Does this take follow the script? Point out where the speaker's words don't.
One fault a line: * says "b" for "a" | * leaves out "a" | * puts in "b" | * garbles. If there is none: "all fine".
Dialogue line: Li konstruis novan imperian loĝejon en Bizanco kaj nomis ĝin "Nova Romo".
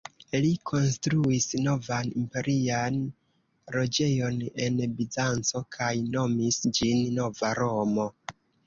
all fine